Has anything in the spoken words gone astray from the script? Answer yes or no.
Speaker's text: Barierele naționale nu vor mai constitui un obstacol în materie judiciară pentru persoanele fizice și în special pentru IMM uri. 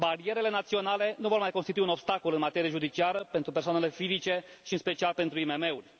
no